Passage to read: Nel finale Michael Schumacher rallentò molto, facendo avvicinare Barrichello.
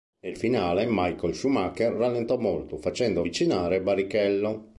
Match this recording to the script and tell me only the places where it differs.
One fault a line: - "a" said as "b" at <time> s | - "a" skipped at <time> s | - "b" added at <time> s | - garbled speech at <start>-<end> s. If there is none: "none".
none